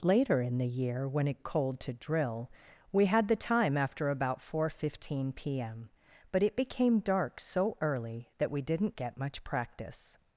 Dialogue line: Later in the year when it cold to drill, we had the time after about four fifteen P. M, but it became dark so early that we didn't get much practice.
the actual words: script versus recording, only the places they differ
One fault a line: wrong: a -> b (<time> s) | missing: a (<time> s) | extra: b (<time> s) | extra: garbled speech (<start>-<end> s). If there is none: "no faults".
no faults